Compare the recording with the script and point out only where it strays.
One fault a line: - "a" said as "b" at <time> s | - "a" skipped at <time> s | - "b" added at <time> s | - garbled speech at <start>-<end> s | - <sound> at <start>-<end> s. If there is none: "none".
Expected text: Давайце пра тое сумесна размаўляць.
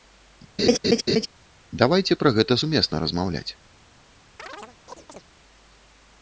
- laugh at 0.6-1.3 s
- "тое" said as "гэта" at 2.4 s
- chirp at 4.4-5.2 s